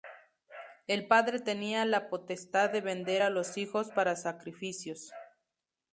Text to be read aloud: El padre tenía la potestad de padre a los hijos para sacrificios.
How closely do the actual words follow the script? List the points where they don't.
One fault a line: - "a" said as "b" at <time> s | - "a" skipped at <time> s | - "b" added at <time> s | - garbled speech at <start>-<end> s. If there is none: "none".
- "padre" said as "vender" at 2.8 s